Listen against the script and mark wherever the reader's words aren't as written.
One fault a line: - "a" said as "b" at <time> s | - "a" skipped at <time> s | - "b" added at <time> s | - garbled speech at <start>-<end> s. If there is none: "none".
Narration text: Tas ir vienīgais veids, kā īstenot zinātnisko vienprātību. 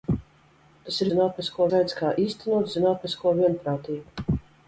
- "vienīgais" said as "zinātnisko" at 1.1 s